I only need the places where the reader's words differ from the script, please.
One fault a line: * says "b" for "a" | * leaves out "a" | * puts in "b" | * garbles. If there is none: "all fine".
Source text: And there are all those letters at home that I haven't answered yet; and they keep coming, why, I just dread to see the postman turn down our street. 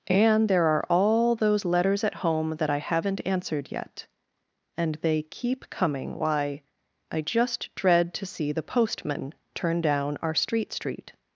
* puts in "street"